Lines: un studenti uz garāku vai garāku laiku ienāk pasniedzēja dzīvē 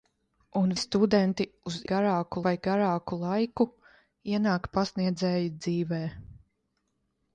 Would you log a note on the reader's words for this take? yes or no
no